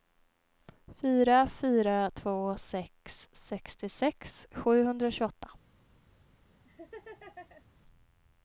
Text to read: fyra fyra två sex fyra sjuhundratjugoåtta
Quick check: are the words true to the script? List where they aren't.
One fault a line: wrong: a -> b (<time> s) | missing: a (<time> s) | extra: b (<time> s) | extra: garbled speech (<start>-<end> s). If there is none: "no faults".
wrong: fyra -> sextiosex (3.3 s)